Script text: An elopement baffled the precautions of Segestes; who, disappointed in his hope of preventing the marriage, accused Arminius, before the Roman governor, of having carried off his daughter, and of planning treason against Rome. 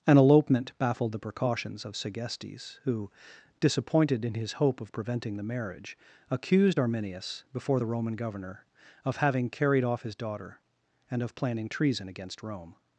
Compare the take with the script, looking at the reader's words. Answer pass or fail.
pass